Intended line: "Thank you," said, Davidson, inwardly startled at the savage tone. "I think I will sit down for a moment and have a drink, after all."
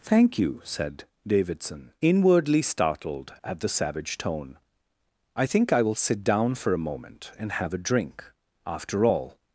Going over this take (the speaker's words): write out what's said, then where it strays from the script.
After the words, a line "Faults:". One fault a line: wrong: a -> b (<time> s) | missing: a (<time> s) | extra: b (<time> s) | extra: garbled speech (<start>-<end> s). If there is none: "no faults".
"Thank you," said, Davidson, inwardly startled at the savage tone. "I think I will sit down for a moment and have a drink, after all."
Faults:
no faults